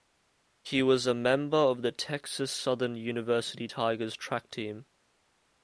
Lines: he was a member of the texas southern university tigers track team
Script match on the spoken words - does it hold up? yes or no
yes